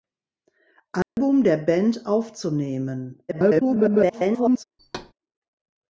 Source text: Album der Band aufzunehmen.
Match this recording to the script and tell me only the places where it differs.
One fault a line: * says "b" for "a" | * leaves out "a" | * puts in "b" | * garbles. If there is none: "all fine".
* garbles